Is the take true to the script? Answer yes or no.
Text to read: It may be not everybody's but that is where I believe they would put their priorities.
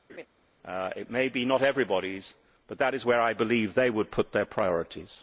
yes